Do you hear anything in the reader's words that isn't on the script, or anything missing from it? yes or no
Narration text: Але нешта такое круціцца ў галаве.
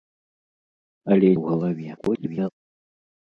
yes